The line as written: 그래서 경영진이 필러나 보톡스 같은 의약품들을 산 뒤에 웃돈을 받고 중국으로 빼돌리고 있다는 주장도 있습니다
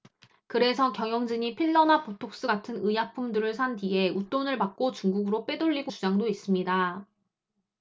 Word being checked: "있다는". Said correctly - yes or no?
no